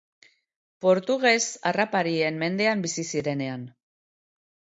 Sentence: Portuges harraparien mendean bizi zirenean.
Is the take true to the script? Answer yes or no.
yes